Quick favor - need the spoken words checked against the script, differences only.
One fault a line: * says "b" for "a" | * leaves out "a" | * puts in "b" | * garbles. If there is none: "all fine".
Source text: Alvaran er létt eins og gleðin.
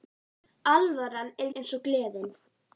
* leaves out "létt"